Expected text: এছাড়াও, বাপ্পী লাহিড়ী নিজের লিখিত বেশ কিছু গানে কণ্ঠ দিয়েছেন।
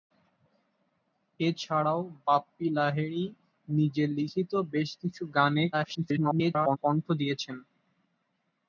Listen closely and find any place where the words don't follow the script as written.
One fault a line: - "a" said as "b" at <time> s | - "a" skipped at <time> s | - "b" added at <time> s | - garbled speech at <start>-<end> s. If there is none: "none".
- garbled speech at 5.7-6.8 s